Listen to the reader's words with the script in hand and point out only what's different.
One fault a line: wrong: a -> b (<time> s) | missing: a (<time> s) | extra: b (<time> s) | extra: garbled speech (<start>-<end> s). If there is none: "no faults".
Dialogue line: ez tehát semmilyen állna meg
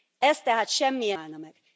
no faults